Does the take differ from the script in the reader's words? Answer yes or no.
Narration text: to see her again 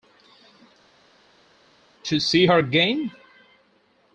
no